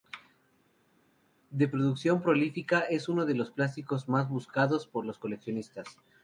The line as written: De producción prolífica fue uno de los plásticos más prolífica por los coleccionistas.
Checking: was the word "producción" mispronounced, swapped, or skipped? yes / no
no